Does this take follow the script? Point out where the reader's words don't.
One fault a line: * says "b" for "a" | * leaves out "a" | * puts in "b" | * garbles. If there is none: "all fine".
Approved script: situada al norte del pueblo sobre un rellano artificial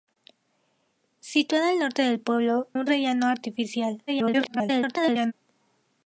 * leaves out "sobre"
* garbles